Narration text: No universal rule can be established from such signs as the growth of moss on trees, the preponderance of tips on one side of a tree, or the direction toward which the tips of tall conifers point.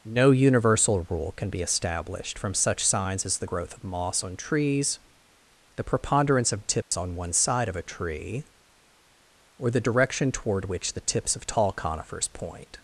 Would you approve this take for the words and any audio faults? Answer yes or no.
no